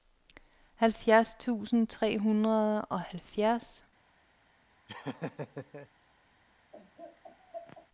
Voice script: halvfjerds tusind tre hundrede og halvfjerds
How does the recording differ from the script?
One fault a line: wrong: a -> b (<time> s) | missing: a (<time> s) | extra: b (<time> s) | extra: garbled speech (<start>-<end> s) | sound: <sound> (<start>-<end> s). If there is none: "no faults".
sound: laugh (4.9-5.9 s)
sound: laugh (6.7-7.9 s)